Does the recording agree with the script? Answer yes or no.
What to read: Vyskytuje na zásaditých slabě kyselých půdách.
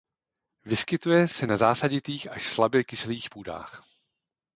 no